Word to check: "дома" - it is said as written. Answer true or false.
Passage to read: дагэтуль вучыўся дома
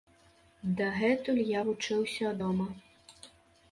true